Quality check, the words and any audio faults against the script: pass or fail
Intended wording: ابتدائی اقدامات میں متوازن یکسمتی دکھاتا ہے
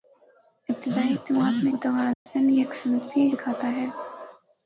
fail